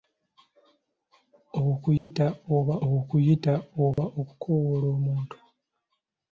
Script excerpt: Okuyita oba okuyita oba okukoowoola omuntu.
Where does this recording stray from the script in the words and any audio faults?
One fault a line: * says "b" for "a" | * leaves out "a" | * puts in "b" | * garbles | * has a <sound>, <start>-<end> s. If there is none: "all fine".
* has a dropout, 2.0-2.1 s
* has a dropout, 3.9-4.0 s